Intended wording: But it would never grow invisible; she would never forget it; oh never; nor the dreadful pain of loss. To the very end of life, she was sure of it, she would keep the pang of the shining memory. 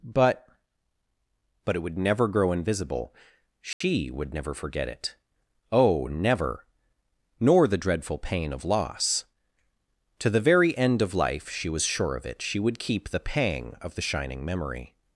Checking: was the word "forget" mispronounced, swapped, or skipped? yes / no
no